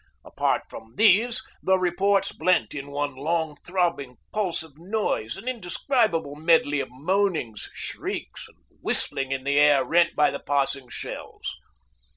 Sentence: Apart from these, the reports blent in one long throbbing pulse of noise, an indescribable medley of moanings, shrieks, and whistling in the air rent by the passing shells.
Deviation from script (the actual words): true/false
false